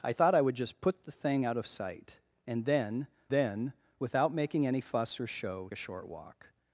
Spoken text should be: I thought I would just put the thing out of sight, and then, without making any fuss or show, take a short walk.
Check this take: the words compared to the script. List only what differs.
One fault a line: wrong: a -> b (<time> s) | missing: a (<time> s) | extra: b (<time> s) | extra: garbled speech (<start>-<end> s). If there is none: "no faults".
extra: then (3.3 s)
missing: take (5.7 s)